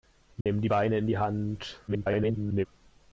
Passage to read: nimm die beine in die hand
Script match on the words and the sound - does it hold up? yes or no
no